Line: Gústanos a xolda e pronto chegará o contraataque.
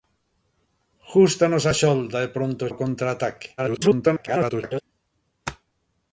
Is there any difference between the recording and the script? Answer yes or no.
yes